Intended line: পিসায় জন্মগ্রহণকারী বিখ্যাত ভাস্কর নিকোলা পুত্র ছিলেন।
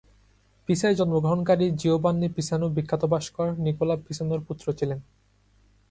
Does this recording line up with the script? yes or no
no